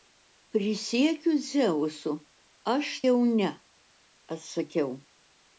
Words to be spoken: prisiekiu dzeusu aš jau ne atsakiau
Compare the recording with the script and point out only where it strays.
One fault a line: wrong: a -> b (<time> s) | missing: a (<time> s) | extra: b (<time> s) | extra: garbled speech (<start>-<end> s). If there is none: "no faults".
no faults